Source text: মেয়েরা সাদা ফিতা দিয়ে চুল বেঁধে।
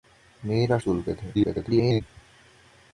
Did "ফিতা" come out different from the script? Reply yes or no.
yes